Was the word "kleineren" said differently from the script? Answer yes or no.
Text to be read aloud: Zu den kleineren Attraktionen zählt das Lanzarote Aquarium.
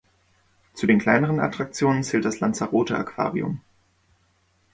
no